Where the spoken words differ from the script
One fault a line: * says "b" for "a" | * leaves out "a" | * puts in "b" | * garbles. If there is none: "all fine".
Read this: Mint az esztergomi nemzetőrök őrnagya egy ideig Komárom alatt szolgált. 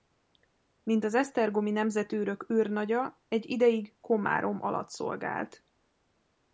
all fine